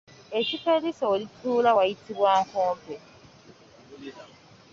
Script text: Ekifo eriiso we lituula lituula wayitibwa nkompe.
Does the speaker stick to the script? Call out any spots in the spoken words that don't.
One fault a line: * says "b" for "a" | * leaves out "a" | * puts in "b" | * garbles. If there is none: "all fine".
* leaves out "lituula"